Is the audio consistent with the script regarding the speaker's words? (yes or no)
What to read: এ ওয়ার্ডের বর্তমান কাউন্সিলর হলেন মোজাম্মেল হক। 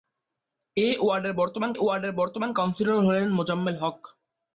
no